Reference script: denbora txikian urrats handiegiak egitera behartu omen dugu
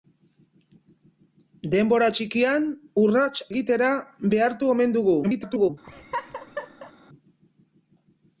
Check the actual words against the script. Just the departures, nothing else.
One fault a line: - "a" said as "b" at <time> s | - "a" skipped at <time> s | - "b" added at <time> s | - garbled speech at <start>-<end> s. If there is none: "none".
- "handiegiak" skipped at 3.4 s
- garbled speech at 5.2-5.7 s